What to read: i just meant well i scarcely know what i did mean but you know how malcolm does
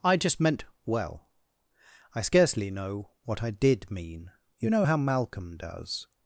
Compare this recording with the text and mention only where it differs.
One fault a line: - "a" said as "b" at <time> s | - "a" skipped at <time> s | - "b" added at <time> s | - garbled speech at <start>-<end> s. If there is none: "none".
- "but" skipped at 4.3 s